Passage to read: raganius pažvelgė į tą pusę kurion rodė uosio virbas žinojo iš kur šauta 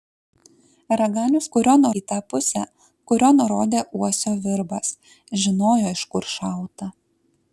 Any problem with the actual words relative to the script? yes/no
yes